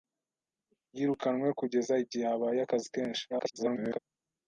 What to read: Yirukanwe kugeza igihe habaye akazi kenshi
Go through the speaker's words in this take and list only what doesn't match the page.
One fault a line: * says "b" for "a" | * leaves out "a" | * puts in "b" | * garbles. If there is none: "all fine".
* garbles